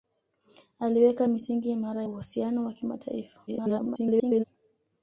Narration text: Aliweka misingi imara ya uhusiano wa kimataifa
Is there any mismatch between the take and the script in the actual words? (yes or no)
yes